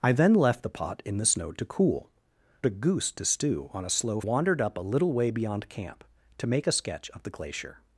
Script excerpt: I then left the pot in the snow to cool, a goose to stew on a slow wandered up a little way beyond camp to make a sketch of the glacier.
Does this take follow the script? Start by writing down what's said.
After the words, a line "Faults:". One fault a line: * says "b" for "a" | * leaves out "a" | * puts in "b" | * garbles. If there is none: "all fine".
I then left the pot in the snow to cool, a goose to stew on a slow wandered up a little way beyond camp to make a sketch of the glacier.
Faults:
all fine